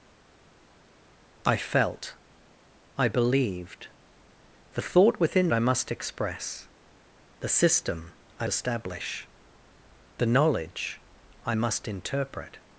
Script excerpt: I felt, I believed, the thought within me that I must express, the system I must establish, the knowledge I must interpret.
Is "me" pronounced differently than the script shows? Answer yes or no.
yes